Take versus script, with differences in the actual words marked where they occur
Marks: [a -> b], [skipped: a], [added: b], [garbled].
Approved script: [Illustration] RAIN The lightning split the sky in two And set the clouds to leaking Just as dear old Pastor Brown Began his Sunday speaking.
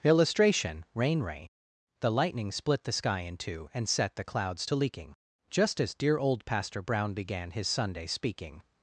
[Illustration] RAIN [added: ray] The lightning split the sky in two And set the clouds to leaking Just as dear old Pastor Brown Began his Sunday speaking.